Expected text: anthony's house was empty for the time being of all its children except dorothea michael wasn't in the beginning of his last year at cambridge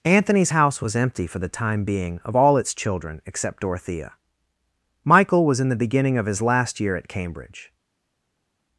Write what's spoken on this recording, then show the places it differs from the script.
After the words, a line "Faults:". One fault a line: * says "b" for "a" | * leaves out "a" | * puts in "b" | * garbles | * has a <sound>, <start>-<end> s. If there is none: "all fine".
anthony's house was empty for the time being of all its children except dorothea michael was in the beginning of his last year at cambridge
Faults:
* says "was" for "wasn't"